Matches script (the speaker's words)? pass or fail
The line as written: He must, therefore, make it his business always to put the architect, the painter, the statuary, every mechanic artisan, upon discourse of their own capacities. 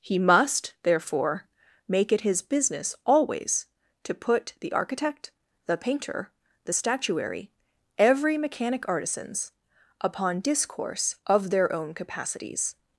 fail